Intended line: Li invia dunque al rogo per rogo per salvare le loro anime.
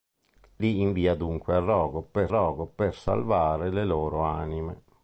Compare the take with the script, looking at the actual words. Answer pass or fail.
pass